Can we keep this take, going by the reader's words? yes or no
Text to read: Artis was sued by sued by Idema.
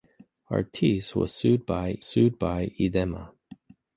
yes